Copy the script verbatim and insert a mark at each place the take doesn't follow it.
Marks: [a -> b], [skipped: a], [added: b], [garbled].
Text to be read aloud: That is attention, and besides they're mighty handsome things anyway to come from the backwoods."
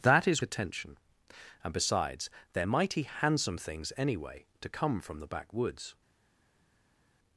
That is attention, and besides they're mighty handsome things anyway to come from the backwoods."